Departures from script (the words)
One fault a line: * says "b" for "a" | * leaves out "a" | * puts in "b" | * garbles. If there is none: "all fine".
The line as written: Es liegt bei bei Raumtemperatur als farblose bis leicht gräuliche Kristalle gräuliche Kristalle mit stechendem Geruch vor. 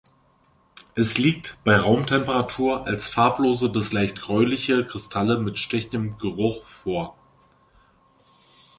* leaves out "bei"
* leaves out "gräuliche Kristalle"